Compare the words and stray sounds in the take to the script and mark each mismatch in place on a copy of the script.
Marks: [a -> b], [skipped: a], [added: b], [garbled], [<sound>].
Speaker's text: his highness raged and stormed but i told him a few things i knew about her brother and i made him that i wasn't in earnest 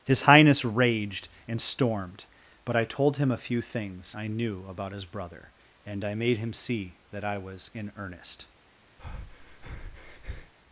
his highness raged and stormed but i told him a few things i knew about [her -> his] brother and i made him [added: see] that i [wasn't -> was] in earnest [breath]